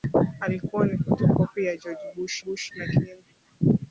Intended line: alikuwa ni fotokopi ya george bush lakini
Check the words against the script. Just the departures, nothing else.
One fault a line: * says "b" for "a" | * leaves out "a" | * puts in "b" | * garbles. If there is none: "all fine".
* puts in "bush"